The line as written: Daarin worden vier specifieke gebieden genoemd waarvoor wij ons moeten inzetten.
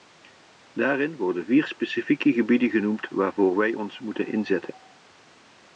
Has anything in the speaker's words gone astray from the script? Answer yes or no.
no